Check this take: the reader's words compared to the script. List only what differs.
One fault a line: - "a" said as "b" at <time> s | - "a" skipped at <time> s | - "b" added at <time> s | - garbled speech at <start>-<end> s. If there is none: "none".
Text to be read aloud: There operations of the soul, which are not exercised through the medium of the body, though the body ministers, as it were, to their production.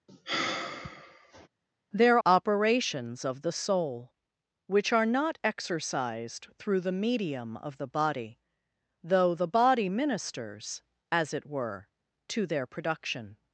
none